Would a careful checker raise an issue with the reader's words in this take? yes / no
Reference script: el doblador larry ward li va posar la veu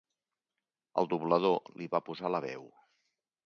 yes